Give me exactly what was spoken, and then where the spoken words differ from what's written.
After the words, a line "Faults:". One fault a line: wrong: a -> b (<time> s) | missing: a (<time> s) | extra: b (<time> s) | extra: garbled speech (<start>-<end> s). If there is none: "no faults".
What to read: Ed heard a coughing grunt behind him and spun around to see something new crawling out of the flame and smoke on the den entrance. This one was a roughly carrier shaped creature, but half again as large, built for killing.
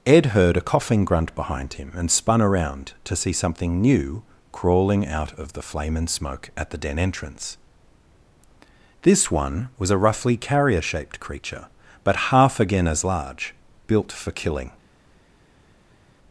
Ed heard a coughing grunt behind him and spun around to see something new crawling out of the flame and smoke at the den entrance. This one was a roughly carrier shaped creature, but half again as large, built for killing.
Faults:
wrong: on -> at (6.6 s)